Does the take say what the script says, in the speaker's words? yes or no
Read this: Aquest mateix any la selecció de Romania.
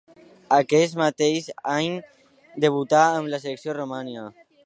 no